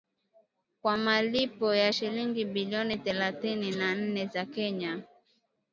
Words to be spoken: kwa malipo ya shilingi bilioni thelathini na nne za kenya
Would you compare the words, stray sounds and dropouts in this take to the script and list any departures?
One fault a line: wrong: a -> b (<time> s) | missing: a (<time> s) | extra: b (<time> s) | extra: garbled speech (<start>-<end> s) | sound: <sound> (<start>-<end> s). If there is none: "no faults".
no faults